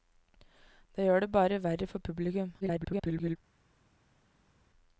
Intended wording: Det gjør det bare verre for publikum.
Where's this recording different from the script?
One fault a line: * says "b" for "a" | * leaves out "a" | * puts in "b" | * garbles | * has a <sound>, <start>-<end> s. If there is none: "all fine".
* garbles